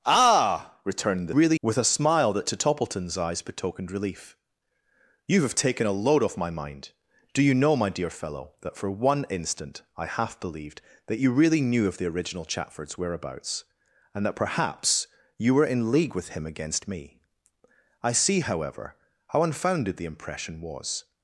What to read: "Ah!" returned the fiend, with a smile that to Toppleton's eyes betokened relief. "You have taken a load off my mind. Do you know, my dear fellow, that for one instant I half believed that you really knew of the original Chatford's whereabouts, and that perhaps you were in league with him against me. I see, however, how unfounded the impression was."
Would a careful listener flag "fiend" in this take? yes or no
yes